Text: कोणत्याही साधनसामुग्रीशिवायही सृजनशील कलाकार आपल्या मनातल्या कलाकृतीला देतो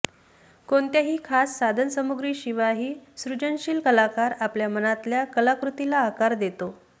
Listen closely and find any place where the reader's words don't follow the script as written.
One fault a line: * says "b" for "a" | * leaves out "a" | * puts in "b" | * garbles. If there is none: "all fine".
* puts in "खास"
* puts in "आकार"